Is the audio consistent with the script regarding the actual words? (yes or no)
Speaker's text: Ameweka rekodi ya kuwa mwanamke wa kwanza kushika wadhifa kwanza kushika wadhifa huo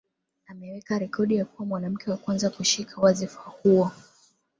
no